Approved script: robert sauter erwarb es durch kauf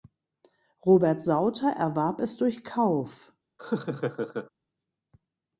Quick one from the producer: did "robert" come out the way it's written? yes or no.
yes